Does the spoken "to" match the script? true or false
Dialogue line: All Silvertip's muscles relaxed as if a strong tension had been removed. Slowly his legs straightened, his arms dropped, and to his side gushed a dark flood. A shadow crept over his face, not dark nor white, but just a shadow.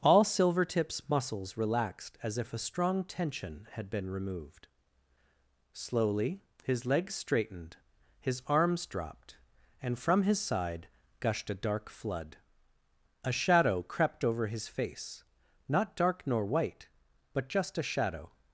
false